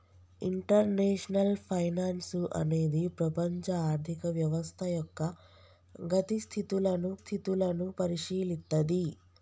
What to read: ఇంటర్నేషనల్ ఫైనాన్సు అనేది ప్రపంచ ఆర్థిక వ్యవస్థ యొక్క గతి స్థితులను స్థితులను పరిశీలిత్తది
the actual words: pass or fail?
pass